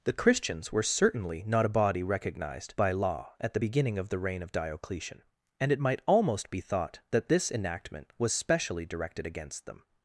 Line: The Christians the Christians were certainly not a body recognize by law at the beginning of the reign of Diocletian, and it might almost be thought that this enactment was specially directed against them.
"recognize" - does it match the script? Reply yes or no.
no